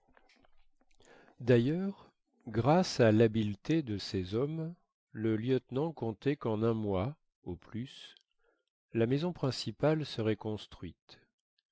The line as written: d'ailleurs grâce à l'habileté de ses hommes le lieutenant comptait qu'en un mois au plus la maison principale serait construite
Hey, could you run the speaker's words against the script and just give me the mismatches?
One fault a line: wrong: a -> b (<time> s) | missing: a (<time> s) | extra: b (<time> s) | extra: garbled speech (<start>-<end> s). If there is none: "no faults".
no faults